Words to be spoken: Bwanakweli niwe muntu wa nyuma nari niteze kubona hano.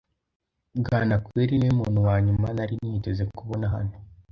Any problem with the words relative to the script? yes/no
no